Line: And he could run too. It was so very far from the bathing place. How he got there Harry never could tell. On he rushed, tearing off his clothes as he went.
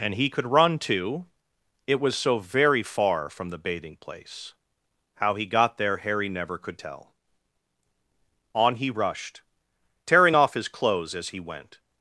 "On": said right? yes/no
yes